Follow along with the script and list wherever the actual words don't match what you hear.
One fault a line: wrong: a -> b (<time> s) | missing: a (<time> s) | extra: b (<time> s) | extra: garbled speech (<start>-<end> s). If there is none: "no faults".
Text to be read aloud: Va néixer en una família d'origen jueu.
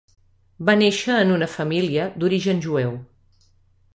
no faults